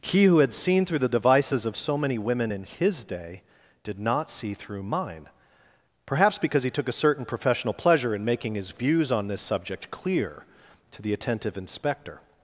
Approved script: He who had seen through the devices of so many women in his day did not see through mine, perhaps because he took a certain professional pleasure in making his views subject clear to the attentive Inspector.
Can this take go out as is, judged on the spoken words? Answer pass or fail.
fail